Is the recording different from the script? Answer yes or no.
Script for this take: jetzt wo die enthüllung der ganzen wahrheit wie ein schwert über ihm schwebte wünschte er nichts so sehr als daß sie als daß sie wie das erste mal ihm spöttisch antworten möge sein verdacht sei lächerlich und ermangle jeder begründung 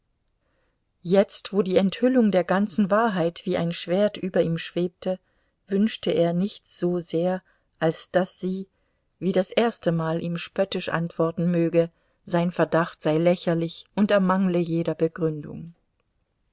yes